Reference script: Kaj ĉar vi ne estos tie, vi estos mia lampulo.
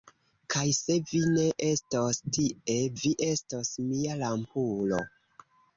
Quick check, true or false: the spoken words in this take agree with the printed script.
false